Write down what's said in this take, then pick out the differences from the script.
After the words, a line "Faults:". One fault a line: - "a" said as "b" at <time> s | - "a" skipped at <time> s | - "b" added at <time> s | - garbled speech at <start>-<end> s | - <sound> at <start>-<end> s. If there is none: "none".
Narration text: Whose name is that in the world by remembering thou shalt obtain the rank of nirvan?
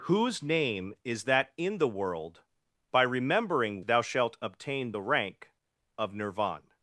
Whose name is that in the world by remembering thou shalt obtain the rank of nirvan?
Faults:
none